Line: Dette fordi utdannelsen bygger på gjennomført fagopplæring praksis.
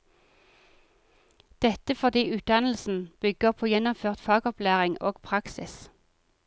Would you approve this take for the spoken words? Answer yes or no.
no